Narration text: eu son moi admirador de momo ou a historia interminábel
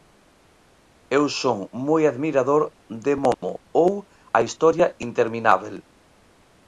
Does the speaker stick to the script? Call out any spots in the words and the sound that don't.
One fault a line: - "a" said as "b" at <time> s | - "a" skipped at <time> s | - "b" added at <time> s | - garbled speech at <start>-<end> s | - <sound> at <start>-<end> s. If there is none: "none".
- dropout at 3.3-3.4 s